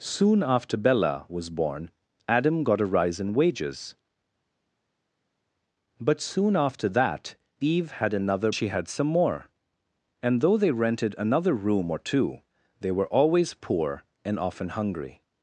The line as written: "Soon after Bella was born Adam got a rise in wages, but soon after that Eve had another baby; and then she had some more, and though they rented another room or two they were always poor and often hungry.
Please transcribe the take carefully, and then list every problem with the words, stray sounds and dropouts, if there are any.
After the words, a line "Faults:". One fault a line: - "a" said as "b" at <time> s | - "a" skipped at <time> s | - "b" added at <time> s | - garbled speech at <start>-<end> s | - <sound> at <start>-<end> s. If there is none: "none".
"Soon after Bella was born Adam got a rise in wages, but soon after that Eve had another she had some more, and though they rented another room or two they were always poor and often hungry.
Faults:
- "baby and then" skipped at 8.5 s